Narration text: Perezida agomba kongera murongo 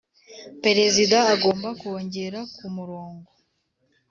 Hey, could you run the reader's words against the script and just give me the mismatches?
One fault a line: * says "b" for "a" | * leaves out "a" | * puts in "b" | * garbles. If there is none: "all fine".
* puts in "ku"